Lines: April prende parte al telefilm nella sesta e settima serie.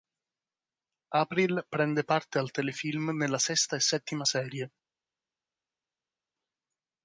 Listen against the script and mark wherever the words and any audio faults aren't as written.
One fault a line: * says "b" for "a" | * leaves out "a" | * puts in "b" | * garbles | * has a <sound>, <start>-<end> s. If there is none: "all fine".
all fine